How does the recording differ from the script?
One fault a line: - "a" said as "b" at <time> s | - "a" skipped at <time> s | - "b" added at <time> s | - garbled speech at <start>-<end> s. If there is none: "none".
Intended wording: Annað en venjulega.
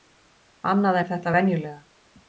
- "þetta" added at 1.1 s